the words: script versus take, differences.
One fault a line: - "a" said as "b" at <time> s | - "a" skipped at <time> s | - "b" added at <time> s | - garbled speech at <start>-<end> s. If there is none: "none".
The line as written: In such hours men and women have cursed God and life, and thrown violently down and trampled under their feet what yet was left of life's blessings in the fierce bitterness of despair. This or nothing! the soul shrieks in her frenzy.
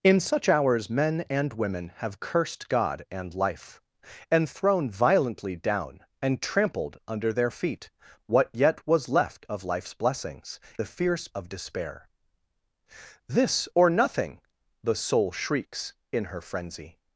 - "in" skipped at 10.6 s
- "bitterness" skipped at 11.3 s